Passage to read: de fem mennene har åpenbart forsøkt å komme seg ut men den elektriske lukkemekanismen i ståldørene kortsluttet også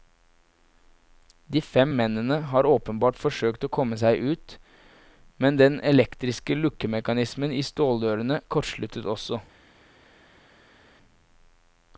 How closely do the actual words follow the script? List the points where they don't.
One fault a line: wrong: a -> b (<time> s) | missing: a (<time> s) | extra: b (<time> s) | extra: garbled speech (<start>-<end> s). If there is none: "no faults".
no faults